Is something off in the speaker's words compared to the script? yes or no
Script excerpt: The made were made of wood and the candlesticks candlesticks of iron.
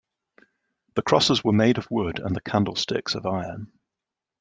yes